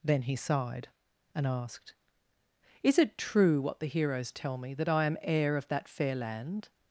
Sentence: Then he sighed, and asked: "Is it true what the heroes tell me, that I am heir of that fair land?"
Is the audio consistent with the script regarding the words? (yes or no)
yes